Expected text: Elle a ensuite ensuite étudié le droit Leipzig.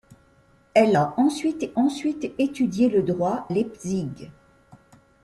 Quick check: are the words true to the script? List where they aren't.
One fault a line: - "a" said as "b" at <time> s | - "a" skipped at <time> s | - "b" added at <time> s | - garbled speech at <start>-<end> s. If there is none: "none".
none